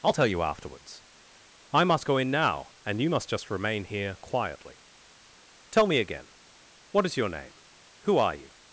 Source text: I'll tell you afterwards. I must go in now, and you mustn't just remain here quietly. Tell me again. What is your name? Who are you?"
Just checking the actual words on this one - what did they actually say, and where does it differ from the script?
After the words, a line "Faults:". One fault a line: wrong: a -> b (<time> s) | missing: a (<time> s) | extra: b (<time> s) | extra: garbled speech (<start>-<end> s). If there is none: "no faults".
I'll tell you afterwards. I must go in now, and you must just remain here quietly. Tell me again. What is your name? Who are you?"
Faults:
wrong: mustn't -> must (3.1 s)